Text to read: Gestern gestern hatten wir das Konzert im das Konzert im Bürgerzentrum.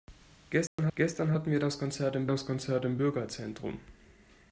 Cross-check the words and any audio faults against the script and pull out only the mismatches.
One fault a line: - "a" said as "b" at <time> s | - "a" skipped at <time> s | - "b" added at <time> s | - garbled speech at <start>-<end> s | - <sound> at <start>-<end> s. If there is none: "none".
- dropout at 0.7-0.8 s